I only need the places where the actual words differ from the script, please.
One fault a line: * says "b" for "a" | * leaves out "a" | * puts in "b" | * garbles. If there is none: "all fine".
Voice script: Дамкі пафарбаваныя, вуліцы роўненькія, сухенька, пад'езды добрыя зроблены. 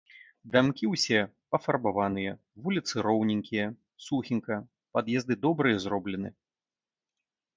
* puts in "ўсе"